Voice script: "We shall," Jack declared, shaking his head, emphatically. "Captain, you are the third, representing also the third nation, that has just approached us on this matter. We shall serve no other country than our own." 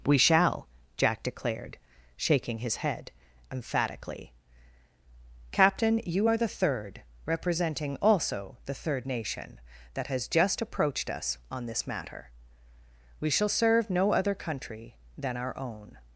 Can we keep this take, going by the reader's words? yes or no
yes